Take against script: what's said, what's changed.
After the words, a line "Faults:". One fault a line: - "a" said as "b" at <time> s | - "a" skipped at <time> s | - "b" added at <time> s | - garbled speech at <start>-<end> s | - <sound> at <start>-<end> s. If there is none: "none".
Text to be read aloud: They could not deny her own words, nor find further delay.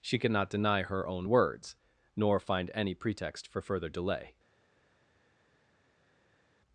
She could not deny her own words, nor find any pretext for further delay.
Faults:
- "They" said as "She" at 0.0 s
- "any pretext for" added at 2.7 s